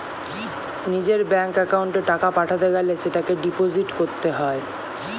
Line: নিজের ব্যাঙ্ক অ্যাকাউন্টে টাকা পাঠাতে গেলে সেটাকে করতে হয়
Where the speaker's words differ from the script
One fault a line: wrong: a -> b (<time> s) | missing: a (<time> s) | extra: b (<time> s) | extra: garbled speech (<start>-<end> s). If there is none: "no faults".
extra: ডিপোজিট (3.4 s)